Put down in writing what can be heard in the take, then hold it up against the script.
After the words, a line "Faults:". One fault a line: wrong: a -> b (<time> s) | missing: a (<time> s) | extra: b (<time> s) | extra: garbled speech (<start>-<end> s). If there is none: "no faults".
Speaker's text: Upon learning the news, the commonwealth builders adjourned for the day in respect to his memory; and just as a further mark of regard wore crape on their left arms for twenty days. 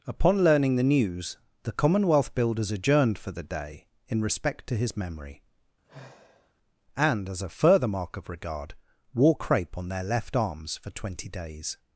Upon learning the news, the commonwealth builders adjourned for the day in respect to his memory; and as a further mark of regard wore crape on their left arms for twenty days.
Faults:
missing: just (7.3 s)